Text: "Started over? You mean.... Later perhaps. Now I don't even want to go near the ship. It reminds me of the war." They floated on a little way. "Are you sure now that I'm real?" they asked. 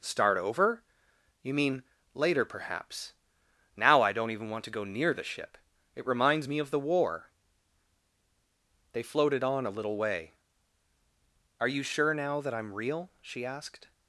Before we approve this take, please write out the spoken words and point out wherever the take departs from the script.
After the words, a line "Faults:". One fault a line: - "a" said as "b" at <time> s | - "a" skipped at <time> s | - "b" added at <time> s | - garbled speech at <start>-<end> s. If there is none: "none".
"Start over? You mean.... Later perhaps. Now I don't even want to go near the ship. It reminds me of the war." They floated on a little way. "Are you sure now that I'm real?" she asked.
Faults:
- "Started" said as "Start" at 0.0 s
- "they" said as "she" at 13.2 s